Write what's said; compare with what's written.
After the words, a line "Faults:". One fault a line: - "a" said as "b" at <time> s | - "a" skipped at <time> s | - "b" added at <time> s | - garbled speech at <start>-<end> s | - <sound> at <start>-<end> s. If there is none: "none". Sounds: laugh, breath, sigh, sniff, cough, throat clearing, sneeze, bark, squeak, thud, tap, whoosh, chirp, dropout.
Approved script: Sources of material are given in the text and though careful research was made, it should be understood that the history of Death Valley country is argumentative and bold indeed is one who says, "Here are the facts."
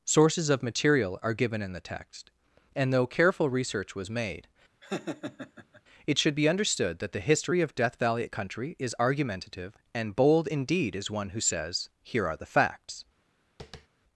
Sources of material are given in the text and though careful research was made, it should be understood that the history of Death Valley country is argumentative and bold indeed is one who says, "Here are the facts."
Faults:
- laugh at 4.8-5.8 s
- tap at 13.6-13.9 s